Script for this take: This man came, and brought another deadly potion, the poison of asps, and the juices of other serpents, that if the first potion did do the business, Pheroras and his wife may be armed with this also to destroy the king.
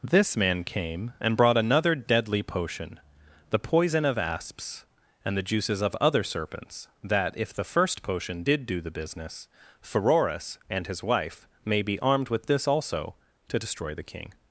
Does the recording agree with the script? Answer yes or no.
yes